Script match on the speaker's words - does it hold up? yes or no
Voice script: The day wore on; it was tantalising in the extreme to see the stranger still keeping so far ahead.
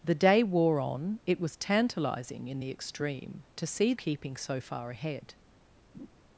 no